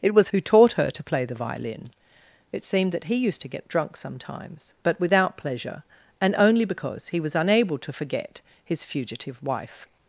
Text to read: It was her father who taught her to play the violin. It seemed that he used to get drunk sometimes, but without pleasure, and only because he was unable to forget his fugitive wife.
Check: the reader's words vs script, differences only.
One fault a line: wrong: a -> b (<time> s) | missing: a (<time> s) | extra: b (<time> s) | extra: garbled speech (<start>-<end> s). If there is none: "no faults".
missing: her father (0.3 s)